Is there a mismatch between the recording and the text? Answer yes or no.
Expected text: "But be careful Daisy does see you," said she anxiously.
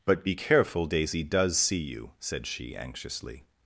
no